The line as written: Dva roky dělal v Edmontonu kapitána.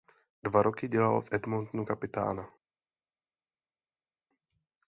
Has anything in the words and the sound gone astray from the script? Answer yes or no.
no